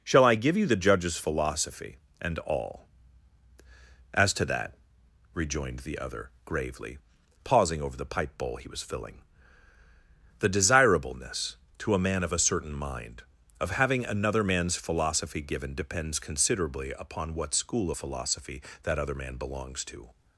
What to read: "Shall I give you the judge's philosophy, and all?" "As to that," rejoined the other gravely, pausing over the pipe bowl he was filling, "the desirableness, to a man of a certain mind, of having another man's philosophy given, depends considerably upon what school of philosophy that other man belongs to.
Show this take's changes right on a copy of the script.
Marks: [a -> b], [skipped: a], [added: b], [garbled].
"Shall I give you the judge's philosophy, and all?" "As to that," rejoined the other gravely, pausing over the pipe bowl he was filling, "the desirableness, to a man of a certain mind, of having another man's philosophy given, depends considerably upon what school of philosophy that other man belongs to.